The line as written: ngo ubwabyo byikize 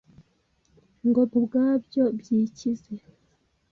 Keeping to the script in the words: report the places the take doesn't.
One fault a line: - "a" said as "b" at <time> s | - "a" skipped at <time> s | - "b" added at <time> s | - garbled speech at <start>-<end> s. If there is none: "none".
none